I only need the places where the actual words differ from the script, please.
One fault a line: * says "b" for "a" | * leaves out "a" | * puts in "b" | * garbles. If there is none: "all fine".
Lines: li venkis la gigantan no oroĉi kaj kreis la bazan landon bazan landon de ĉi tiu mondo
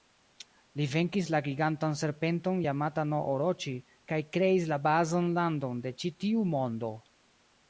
* puts in "serpenton jamata"
* leaves out "bazan landon"